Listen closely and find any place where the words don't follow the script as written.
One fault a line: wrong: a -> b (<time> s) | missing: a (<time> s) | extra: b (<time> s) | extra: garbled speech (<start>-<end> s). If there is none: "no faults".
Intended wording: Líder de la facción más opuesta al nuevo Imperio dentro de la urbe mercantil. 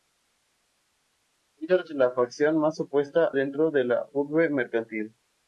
missing: al nuevo Imperio (3.4 s)